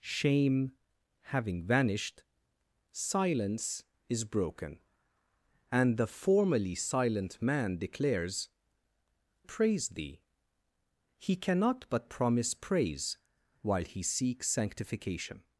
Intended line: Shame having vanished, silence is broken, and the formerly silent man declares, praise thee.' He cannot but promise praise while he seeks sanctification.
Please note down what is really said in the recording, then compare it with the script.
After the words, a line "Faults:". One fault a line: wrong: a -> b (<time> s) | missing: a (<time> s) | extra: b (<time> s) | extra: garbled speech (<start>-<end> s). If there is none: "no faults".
Shame having vanished, silence is broken, and the formerly silent man declares, praise thee.' He cannot but promise praise while he seeks sanctification.
Faults:
no faults